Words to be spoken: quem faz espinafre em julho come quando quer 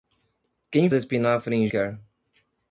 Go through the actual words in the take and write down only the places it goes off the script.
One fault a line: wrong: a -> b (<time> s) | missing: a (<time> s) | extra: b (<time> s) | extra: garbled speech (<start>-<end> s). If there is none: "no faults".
missing: faz (0.9 s)
missing: julho come quando (1.7 s)